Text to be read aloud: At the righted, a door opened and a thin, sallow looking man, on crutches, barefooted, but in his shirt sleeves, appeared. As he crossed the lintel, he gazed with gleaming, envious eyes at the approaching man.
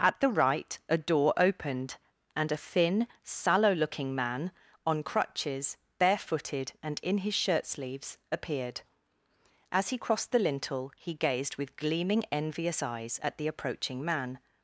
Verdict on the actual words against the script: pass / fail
fail